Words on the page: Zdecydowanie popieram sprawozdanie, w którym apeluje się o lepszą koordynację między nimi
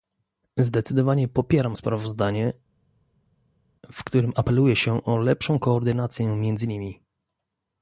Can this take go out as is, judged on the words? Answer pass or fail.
pass